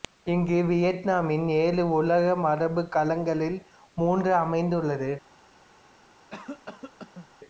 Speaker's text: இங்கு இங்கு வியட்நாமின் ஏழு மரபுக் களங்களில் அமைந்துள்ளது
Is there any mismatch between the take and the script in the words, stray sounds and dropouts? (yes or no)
yes